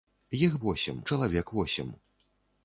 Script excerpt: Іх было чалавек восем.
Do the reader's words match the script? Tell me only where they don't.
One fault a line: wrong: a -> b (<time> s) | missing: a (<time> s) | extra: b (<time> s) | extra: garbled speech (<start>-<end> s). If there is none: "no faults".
wrong: было -> восем (0.7 s)